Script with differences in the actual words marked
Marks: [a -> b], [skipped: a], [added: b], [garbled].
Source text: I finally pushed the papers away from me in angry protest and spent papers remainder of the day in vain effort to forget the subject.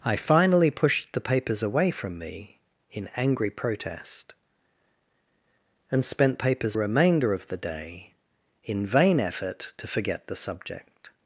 I finally pushed the papers away from me in angry protest and spent papers remainder of the day in vain effort to forget the subject.